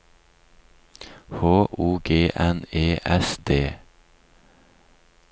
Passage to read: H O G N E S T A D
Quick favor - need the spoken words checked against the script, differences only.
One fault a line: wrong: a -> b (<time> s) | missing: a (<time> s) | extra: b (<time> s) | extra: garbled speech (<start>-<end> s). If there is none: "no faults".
missing: T A (3.4 s)